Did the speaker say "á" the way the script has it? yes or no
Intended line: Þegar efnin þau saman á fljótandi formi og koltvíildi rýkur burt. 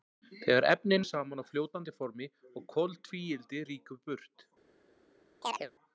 yes